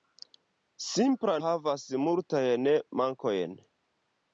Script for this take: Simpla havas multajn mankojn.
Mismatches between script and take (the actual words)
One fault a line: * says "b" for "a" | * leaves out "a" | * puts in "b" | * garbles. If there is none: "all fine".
all fine